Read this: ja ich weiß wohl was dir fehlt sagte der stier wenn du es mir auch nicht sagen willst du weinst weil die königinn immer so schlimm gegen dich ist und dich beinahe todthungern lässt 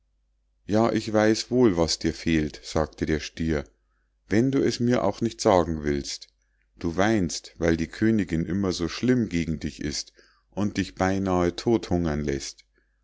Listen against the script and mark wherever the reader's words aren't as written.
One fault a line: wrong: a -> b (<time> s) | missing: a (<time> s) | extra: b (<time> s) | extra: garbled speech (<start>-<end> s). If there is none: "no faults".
no faults